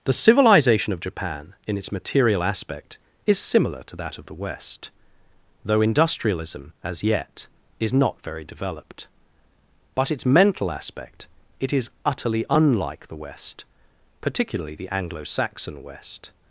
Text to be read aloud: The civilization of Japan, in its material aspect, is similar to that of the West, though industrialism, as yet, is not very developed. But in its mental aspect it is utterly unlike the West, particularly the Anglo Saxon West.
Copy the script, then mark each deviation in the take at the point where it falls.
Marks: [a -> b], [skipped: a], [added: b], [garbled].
The civilization of Japan, in its material aspect, is similar to that of the West, though industrialism, as yet, is not very developed. But [skipped: in] its mental aspect it is utterly unlike the West, particularly the Anglo Saxon West.